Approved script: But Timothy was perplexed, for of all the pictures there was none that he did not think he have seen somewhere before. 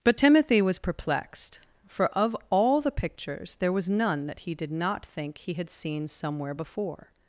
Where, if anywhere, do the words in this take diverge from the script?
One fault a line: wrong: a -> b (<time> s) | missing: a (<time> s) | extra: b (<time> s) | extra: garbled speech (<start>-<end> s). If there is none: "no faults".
wrong: have -> had (5.5 s)